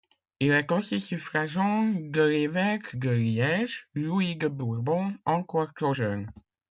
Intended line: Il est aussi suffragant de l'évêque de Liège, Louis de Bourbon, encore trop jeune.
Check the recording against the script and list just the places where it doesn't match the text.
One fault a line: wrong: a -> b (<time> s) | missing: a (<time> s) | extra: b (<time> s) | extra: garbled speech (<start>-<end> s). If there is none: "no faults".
no faults